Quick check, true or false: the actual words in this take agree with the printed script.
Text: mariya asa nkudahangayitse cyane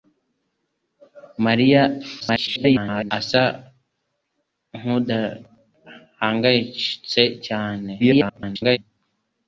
false